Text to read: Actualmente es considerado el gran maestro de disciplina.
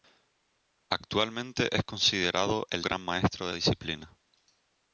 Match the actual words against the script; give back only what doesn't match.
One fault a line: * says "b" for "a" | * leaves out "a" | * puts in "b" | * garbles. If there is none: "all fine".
all fine